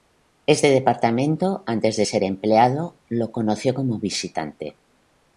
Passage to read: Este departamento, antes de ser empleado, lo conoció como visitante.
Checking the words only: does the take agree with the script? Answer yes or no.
yes